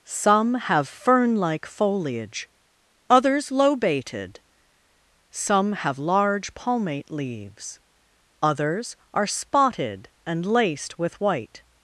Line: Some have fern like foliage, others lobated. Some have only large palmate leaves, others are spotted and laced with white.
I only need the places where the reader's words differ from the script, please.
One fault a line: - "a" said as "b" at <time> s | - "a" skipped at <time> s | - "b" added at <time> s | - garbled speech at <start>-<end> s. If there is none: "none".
- "only" skipped at 6.0 s